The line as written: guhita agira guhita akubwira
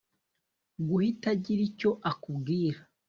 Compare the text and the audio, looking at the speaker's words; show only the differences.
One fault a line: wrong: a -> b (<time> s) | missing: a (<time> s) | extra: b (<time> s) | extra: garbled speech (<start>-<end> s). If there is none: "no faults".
wrong: guhita -> icyo (1.7 s)